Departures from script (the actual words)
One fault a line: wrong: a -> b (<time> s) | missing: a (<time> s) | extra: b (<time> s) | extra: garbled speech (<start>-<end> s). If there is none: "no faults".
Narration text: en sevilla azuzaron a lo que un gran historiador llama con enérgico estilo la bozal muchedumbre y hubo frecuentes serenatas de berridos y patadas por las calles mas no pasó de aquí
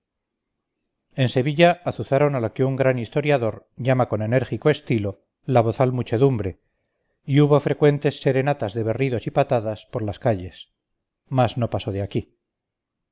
no faults